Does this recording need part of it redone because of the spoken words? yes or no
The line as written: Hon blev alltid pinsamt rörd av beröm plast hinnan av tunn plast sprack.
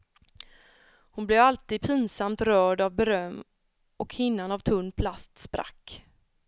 yes